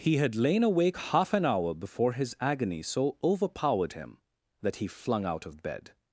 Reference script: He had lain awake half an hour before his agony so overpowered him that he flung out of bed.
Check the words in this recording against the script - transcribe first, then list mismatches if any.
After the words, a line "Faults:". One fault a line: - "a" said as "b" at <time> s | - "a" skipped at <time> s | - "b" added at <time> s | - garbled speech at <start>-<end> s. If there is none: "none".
He had lain awake half an hour before his agony so overpowered him that he flung out of bed.
Faults:
none